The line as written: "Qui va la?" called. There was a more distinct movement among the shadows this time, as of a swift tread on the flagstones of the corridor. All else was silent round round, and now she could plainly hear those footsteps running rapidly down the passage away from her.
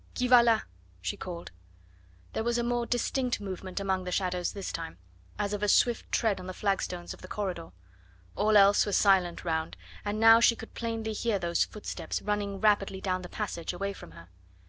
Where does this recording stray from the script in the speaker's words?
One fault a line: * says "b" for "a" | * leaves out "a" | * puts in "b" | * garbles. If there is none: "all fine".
* puts in "she"
* leaves out "round"